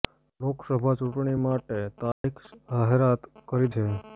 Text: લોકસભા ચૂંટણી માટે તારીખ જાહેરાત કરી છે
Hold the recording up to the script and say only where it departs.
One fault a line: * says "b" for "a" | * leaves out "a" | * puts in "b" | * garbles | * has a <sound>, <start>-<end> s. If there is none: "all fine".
* has a dropout, 2.1-2.2 s